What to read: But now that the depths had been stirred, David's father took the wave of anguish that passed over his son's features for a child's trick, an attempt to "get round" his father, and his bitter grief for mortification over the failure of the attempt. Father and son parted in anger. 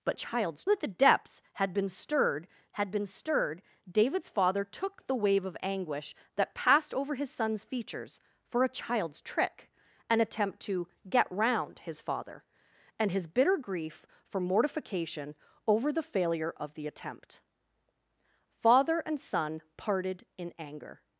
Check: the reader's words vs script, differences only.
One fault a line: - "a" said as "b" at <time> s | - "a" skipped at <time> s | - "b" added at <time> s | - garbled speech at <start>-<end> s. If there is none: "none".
- "now" said as "child's" at 0.1 s
- "had been stirred" added at 2.7 s